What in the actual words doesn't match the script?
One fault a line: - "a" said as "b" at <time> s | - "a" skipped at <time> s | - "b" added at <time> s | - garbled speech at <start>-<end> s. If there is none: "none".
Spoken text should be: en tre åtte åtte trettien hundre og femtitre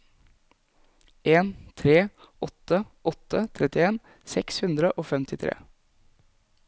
- "seks" added at 4.3 s